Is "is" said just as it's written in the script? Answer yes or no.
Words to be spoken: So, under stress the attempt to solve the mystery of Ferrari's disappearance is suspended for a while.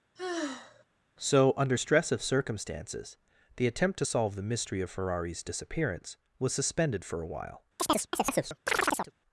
no